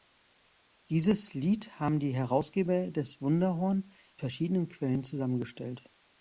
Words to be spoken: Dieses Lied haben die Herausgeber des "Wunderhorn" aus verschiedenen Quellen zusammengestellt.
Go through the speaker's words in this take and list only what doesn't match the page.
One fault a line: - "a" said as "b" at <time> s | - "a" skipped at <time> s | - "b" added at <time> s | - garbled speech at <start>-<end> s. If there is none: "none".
- "aus" skipped at 3.9 s